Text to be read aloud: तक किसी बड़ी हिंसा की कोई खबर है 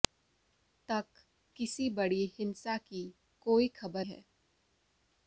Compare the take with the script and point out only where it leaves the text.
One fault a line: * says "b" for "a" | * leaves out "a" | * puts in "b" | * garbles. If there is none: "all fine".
all fine